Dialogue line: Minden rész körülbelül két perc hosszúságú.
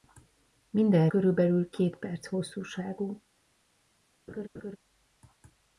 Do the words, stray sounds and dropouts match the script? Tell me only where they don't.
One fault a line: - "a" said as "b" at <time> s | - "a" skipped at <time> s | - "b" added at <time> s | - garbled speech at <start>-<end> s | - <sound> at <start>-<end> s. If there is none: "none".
- "rész" skipped at 1.1 s
- laugh at 4.3-4.8 s